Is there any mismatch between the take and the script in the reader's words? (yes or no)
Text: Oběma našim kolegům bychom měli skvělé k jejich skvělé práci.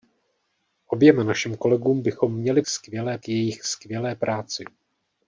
no